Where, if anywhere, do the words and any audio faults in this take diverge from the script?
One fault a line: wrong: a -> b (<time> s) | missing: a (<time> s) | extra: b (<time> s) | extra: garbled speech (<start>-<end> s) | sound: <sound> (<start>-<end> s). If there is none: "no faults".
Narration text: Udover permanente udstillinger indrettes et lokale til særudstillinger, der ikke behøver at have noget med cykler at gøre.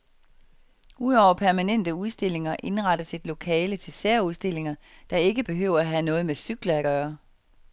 no faults